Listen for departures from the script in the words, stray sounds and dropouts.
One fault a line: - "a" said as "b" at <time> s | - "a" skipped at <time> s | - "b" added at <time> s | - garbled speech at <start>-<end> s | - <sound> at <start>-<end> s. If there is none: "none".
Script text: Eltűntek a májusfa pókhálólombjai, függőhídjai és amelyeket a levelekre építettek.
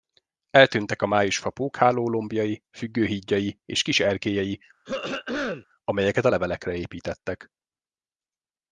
- "kis erkélyei" added at 3.8 s
- throat clearing at 4.8-5.7 s